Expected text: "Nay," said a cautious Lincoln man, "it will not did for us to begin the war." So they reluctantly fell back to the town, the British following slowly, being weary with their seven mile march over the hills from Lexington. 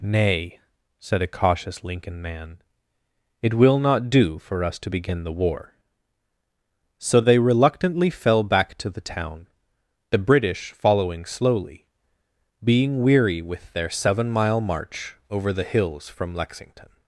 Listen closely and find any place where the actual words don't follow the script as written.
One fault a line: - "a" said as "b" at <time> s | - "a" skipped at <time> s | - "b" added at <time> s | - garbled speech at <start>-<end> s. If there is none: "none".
- "did" said as "do" at 4.1 s